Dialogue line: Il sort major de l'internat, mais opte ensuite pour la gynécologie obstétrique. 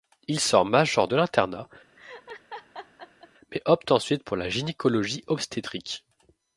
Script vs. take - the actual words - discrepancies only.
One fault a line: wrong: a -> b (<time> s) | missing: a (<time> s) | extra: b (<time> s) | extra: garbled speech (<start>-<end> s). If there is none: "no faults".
no faults